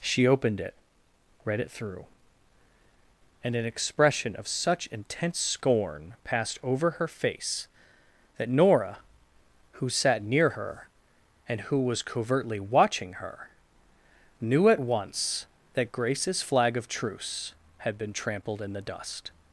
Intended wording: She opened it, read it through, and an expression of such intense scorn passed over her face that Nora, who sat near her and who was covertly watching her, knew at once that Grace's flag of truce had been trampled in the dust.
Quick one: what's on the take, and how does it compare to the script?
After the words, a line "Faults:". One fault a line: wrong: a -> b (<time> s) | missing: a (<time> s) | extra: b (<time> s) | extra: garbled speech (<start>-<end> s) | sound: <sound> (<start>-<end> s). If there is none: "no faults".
She opened it, read it through, and an expression of such intense scorn passed over her face that Nora, who sat near her and who was covertly watching her, knew at once that Grace's flag of truce had been trampled in the dust.
Faults:
no faults